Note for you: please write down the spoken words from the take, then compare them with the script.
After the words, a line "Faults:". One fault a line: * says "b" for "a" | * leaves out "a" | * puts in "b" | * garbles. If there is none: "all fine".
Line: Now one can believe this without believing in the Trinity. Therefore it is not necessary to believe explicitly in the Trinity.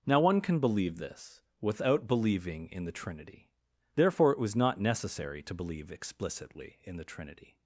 Now one can believe this without believing in the Trinity. Therefore it was not necessary to believe explicitly in the Trinity.
Faults:
* says "was" for "is"